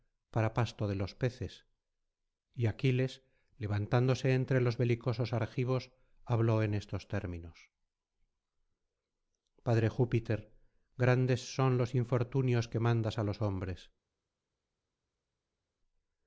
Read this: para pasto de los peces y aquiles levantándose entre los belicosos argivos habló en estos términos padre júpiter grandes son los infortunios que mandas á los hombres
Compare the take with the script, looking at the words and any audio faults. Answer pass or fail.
pass